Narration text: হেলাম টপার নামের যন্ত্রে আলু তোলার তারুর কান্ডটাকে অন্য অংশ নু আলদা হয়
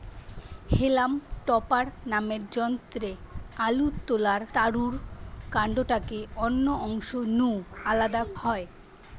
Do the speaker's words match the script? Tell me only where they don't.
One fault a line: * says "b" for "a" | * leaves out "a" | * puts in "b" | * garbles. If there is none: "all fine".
all fine